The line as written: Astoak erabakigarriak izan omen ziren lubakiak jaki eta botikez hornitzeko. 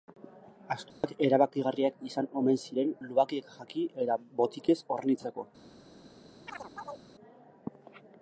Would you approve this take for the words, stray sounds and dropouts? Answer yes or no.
no